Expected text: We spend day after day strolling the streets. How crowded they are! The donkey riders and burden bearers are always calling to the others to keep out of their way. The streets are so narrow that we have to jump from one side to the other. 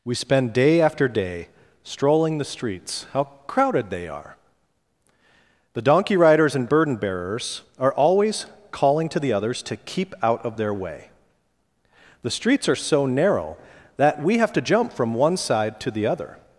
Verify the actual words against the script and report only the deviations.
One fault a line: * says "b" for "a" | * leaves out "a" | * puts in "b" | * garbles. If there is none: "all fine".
all fine